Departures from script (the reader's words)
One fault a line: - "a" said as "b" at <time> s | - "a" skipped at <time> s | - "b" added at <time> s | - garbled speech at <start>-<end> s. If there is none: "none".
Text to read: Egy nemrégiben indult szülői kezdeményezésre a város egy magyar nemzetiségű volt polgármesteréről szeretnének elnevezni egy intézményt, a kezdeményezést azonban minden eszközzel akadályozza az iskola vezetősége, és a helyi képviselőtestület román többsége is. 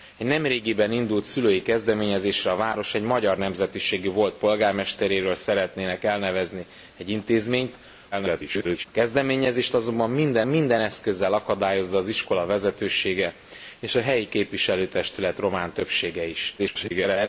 - garbled speech at 8.1-8.9 s
- "minden" added at 10.5 s
- garbled speech at 16.6-17.3 s